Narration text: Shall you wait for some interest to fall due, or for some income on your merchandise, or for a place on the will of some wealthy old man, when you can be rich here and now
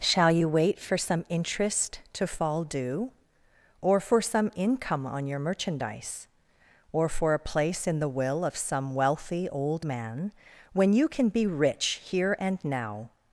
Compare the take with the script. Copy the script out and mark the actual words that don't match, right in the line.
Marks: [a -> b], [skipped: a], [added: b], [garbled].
Shall you wait for some interest to fall due, or for some income on your merchandise, or for a place [on -> in] the will of some wealthy old man, when you can be rich here and now